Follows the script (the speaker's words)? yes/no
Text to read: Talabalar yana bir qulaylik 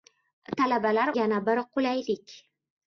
yes